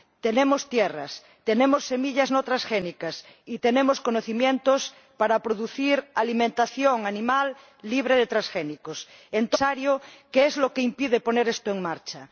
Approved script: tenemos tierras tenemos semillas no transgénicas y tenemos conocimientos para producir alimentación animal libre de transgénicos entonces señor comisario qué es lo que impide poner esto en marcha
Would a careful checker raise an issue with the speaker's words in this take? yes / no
no